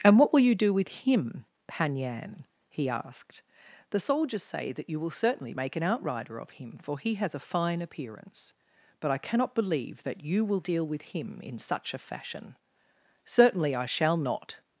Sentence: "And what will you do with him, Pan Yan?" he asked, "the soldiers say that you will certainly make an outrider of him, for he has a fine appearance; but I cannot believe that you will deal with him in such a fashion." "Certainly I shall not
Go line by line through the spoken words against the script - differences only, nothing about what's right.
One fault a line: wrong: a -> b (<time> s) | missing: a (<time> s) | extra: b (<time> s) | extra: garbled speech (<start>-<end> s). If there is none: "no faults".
no faults